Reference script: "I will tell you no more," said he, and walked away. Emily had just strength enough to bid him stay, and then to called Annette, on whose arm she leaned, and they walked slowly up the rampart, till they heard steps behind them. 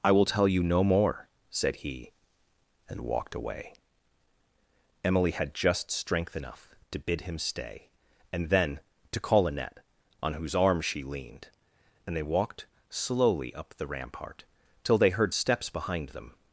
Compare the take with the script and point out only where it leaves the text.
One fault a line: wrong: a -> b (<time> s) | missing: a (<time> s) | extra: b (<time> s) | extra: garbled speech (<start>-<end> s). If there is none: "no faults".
wrong: called -> call (9.2 s)